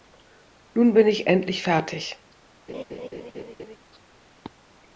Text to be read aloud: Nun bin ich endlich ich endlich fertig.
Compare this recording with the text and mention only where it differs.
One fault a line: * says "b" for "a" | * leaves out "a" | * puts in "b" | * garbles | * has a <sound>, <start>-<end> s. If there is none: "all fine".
* leaves out "ich endlich"
* has a laugh, 2.7-3.8 s